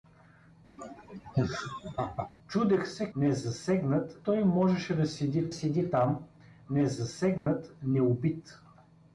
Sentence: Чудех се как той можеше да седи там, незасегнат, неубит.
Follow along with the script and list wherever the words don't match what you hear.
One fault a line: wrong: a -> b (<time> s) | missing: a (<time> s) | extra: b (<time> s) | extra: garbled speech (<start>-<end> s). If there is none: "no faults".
wrong: как -> незасегнат (3.1 s)
extra: седи (5.5 s)